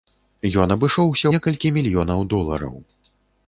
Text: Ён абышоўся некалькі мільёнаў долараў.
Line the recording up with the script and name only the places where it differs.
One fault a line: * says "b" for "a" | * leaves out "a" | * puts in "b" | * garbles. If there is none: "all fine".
all fine